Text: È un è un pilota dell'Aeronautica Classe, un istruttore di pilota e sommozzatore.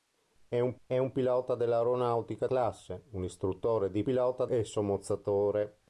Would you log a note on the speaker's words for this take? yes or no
no